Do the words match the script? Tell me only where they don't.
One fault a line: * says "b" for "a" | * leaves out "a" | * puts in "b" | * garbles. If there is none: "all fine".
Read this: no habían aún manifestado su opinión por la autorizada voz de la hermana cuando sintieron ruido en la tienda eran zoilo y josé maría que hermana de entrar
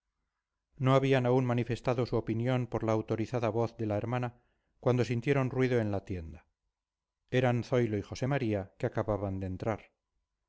* says "acababan" for "hermana"